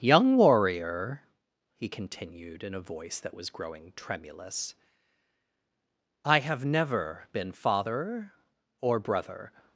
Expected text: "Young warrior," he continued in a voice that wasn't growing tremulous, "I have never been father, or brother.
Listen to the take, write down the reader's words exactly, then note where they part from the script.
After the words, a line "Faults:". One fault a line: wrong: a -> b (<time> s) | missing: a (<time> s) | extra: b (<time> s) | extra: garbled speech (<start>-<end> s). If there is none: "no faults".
"Young warrior," he continued in a voice that was growing tremulous, "I have never been father, or brother.
Faults:
wrong: wasn't -> was (3.4 s)